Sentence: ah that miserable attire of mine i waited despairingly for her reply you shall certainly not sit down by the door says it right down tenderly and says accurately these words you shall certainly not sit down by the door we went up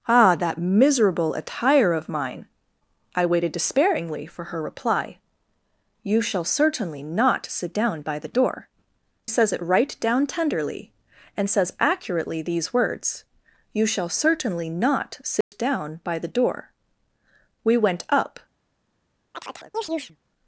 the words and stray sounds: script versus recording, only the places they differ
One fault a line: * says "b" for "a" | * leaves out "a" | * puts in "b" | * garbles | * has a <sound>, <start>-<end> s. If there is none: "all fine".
* has a dropout, 15.4-15.5 s
* has a chirp, 19.3-20.2 s